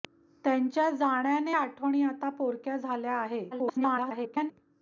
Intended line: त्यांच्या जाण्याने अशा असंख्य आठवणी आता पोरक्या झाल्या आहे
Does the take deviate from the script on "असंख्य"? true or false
true